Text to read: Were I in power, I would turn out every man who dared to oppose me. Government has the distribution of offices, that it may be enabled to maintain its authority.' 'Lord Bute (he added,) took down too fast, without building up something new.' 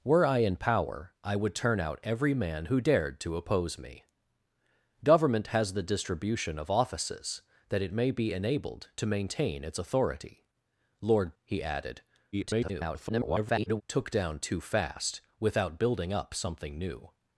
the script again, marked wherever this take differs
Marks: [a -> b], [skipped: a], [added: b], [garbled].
Were I in power, I would turn out every man who dared to oppose me. Government has the distribution of offices, that it may be enabled to maintain its authority.' 'Lord [skipped: Bute] (he added,) [garbled] took down too fast, without building up something new.'